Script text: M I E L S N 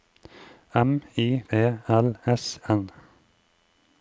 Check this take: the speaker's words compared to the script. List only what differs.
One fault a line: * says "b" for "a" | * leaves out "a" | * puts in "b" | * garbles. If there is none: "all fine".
all fine